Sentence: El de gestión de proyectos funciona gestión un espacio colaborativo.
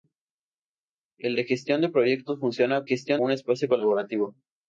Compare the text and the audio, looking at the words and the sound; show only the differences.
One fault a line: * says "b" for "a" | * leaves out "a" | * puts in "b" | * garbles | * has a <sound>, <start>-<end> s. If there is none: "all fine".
all fine